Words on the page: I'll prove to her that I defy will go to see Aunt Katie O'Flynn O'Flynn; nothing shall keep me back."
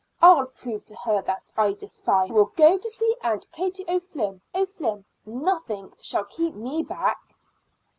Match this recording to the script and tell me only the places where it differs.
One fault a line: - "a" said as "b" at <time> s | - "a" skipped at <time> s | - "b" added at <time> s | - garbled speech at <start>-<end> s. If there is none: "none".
none